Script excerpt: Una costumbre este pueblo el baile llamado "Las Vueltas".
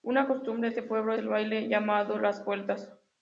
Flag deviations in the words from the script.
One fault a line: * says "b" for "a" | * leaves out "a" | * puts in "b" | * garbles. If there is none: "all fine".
all fine